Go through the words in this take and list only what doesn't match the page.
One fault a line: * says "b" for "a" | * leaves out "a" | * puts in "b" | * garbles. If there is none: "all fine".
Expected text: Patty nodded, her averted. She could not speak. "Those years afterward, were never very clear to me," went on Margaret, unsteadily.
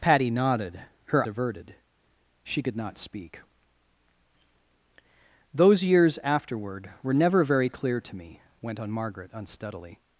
all fine